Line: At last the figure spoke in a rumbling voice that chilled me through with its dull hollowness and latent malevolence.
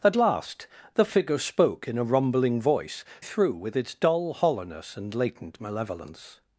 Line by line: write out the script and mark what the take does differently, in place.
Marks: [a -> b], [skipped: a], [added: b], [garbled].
At last the figure spoke in a rumbling voice [skipped: that chilled me] through with its dull hollowness and latent malevolence.